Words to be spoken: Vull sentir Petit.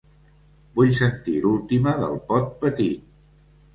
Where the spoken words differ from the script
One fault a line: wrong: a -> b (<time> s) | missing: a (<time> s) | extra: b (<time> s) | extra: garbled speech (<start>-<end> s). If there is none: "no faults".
extra: l'última del Pot (1.4 s)